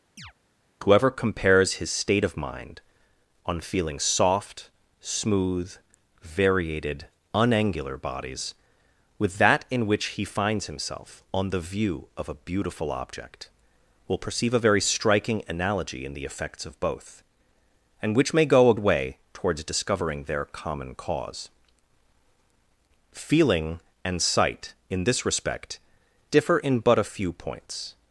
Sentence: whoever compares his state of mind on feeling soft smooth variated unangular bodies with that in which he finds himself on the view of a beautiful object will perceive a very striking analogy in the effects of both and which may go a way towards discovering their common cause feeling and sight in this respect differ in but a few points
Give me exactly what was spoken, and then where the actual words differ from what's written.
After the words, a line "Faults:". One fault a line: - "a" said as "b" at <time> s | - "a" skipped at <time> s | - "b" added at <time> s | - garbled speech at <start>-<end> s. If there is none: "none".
whoever compares his state of mind on feeling soft smooth variated unangular bodies with that in which he finds himself on the view of a beautiful object will perceive a very striking analogy in the effects of both and which may go a way towards discovering their common cause feeling and sight in this respect differ in but a few points
Faults:
none